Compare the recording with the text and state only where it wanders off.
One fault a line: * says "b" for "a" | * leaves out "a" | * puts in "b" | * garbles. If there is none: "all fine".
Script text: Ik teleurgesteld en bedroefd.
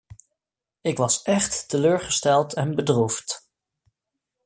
* puts in "was echt"